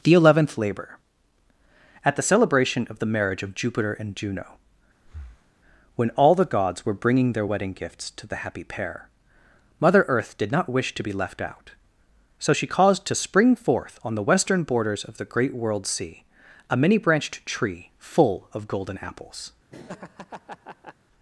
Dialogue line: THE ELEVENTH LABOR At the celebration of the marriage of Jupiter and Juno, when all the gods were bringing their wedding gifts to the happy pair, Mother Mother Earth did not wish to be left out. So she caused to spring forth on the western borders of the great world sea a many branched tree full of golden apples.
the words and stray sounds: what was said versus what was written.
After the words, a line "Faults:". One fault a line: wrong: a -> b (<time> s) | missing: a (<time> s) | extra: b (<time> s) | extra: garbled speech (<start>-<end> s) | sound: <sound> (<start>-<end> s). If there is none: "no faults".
THE ELEVENTH LABOR At the celebration of the marriage of Jupiter and Juno, when all the gods were bringing their wedding gifts to the happy pair, Mother Earth did not wish to be left out. So she caused to spring forth on the western borders of the great world sea a many branched tree full of golden apples.
Faults:
sound: breath (5.0-5.5 s)
missing: Mother (10.0 s)
sound: laugh (19.7-20.9 s)